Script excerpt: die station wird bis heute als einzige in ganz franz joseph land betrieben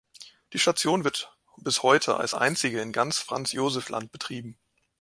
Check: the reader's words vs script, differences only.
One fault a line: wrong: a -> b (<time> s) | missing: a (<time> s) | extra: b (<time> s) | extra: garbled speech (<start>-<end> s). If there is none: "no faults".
no faults